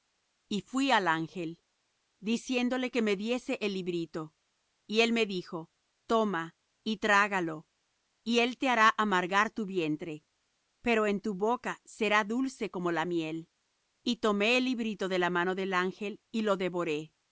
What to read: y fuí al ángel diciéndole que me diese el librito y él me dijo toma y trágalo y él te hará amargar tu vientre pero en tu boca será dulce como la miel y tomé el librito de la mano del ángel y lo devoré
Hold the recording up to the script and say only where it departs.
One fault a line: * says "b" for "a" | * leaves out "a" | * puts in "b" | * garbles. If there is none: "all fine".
all fine